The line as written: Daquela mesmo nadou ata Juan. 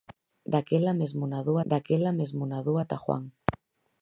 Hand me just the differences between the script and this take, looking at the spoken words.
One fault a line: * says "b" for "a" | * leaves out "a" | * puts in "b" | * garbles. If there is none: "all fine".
* puts in "daquela mesmo nadou"